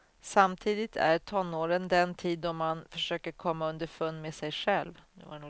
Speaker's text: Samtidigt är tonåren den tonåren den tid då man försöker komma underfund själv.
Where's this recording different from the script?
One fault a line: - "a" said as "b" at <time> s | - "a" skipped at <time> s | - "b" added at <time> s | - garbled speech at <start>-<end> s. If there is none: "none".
- "tonåren den" skipped at 2.1 s
- "med sig" added at 4.2 s